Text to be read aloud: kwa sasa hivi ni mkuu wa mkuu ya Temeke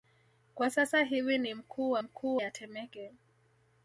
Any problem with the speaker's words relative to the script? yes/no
no